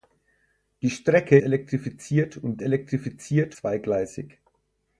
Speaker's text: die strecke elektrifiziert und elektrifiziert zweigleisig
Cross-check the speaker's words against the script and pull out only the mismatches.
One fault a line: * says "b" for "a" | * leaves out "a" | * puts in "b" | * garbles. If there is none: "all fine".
all fine